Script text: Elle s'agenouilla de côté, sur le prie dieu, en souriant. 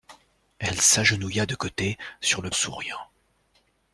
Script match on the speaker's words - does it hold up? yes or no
no